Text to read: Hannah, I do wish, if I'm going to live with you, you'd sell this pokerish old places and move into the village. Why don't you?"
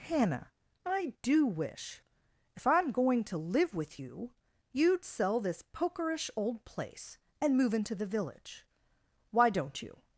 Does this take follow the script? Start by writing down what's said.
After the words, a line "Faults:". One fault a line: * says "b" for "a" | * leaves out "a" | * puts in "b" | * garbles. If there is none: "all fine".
Hannah, I do wish, if I'm going to live with you, you'd sell this pokerish old place and move into the village. Why don't you?"
Faults:
* says "place" for "places"